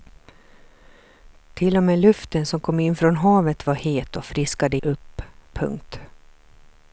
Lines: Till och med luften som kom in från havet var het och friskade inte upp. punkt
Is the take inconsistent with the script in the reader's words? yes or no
yes